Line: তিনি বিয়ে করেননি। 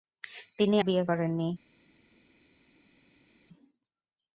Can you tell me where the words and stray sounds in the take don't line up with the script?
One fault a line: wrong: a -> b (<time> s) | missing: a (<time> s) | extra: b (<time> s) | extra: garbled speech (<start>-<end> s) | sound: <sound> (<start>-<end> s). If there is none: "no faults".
no faults